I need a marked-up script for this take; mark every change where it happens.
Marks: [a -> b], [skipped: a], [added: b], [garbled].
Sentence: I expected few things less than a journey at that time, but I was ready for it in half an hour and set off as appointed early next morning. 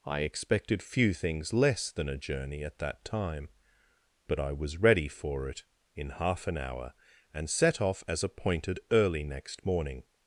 I expected few things less than a journey at that time, but I was ready for it in half an hour and set off as appointed early next morning.